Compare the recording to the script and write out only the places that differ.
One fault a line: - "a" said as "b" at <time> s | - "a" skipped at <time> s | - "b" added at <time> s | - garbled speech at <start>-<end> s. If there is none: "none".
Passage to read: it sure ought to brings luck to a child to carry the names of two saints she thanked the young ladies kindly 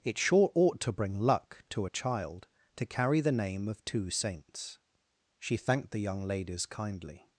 - "brings" said as "bring" at 0.9 s
- "names" said as "name" at 3.3 s